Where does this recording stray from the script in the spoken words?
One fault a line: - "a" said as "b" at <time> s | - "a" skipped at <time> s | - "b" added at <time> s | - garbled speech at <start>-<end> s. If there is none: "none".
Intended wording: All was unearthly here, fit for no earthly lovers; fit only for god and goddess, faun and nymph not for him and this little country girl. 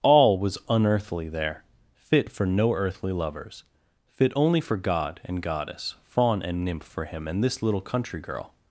- "here" said as "there" at 1.3 s
- "not" skipped at 6.8 s